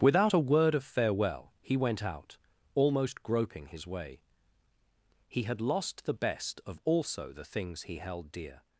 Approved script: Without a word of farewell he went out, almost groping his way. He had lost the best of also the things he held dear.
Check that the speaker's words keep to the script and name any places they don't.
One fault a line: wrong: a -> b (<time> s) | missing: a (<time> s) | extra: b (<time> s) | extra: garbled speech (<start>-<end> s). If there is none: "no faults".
no faults